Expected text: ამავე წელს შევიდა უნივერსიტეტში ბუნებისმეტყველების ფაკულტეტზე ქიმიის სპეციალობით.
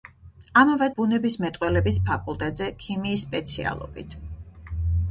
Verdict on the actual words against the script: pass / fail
fail